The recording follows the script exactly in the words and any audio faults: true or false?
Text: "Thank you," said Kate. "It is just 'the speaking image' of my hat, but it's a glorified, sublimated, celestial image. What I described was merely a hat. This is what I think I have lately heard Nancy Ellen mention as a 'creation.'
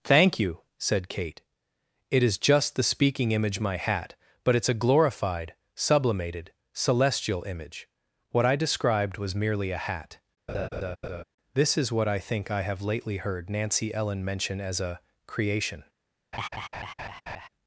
false